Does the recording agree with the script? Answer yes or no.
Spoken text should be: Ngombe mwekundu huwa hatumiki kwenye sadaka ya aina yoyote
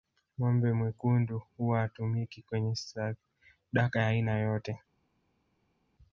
yes